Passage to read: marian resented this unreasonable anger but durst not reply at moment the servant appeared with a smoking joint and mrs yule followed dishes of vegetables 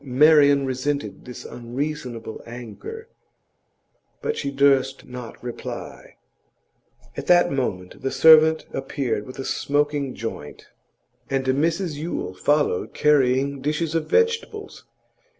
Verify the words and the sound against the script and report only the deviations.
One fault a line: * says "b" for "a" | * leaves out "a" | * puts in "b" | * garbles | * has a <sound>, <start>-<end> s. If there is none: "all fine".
* puts in "she"
* puts in "that"
* puts in "carrying"